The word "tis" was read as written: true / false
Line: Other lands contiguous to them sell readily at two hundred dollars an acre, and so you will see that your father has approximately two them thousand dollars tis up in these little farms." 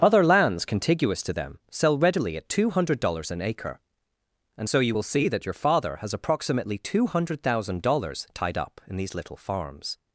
false